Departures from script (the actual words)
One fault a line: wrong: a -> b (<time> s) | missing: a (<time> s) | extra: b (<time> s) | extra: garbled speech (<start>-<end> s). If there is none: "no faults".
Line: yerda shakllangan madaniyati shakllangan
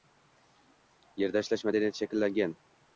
wrong: shakllangan -> ishlash (1.5 s)